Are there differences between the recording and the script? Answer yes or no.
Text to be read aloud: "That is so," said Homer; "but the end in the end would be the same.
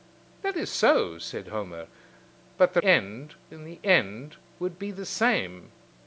no